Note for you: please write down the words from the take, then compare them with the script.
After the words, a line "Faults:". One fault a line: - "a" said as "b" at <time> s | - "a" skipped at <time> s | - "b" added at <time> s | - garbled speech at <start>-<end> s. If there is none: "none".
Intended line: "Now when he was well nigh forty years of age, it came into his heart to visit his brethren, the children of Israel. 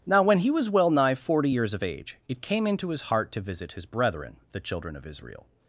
"Now when he was well nigh forty years of age, it came into his heart to visit his brethren, the children of Israel.
Faults:
none